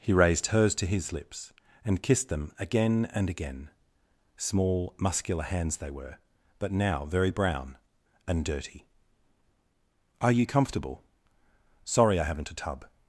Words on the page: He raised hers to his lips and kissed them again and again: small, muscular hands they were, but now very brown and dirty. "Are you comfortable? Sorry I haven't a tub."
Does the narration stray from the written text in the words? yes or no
no